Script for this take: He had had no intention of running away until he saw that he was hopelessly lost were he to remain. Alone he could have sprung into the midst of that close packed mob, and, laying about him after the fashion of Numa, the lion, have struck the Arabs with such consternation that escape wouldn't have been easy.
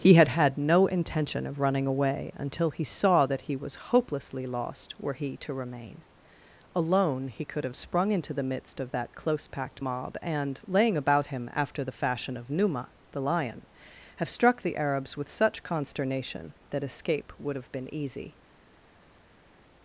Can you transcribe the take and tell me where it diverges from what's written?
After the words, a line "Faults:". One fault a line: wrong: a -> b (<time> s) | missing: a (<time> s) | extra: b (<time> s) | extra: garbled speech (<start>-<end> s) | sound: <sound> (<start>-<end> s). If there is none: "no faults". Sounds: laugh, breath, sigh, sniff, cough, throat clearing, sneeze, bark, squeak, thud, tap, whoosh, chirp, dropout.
He had had no intention of running away until he saw that he was hopelessly lost were he to remain. Alone he could have sprung into the midst of that close packed mob, and, laying about him after the fashion of Numa, the lion, have struck the Arabs with such consternation that escape would have been easy.
Faults:
wrong: wouldn't -> would (17.4 s)